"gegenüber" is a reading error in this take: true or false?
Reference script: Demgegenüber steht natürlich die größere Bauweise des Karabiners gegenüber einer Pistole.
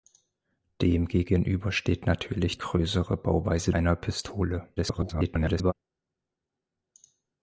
true